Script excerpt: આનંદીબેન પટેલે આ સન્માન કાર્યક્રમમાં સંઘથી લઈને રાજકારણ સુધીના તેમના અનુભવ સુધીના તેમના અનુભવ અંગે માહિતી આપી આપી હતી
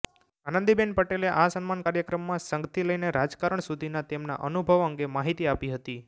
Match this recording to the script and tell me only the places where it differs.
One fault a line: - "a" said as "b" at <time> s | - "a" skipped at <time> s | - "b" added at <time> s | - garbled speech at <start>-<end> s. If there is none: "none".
- "સુધીના તેમના અનુભવ" skipped at 4.9 s
- "આપી" skipped at 5.7 s